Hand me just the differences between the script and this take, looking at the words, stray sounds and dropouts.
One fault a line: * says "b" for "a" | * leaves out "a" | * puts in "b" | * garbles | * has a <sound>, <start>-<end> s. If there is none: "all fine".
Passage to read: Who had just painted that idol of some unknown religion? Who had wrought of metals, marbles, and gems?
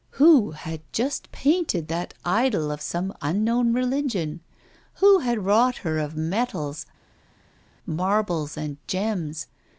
* puts in "her"